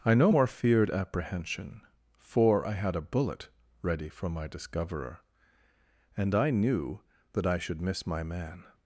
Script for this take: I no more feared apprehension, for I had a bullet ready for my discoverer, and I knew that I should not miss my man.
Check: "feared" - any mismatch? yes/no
no